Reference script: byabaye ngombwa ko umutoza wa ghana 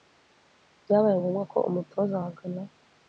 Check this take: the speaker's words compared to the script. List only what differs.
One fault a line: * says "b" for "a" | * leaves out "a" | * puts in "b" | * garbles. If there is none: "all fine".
all fine